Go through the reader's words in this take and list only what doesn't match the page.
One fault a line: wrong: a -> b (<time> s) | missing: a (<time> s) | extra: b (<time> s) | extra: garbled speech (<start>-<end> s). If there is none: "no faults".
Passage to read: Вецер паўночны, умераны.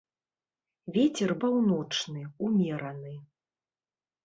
no faults